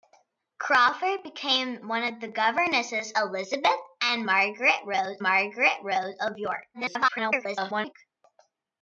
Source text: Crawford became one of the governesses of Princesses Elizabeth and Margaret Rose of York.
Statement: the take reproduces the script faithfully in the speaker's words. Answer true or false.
false